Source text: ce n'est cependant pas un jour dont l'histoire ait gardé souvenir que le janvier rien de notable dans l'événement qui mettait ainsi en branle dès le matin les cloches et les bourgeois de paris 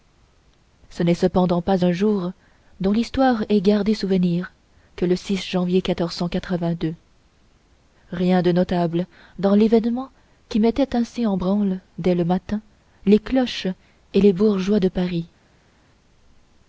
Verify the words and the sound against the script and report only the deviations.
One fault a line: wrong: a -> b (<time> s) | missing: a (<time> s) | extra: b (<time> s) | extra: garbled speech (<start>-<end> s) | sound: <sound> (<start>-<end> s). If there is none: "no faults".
no faults